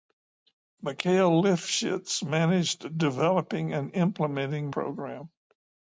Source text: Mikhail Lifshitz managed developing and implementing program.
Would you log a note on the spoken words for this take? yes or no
no